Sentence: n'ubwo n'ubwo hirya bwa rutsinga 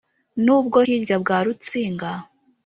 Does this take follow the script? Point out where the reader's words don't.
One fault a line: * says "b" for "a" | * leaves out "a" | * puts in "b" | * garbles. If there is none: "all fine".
* leaves out "n'ubwo"